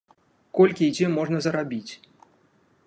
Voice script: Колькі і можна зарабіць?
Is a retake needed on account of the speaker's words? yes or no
yes